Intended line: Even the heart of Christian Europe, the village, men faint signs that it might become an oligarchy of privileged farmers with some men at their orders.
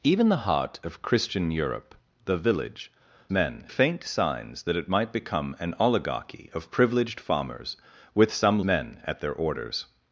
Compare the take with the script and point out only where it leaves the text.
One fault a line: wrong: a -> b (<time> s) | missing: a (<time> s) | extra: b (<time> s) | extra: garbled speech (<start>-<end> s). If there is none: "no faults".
no faults